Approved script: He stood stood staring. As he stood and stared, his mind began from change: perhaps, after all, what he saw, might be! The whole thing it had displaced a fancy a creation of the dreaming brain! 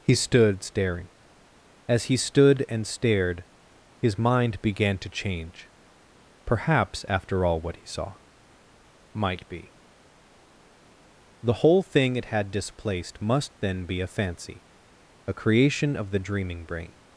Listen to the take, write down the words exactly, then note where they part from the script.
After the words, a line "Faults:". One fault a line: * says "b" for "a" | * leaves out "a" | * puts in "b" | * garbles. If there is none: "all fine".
He stood staring. As he stood and stared, his mind began to change: perhaps, after all, what he saw, might be! The whole thing it had displaced must then be a fancy a creation of the dreaming brain!
Faults:
* leaves out "stood"
* says "to" for "from"
* puts in "must then be"